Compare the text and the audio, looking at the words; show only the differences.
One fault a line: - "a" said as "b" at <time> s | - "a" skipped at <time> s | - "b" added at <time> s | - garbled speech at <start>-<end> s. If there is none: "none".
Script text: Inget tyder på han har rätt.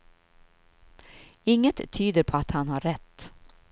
- "att" added at 2.3 s